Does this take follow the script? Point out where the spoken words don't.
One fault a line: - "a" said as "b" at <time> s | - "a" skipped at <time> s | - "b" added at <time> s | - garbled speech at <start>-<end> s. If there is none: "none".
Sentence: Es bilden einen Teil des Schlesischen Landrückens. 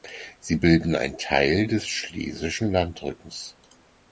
- "Es" said as "Sie" at 0.4 s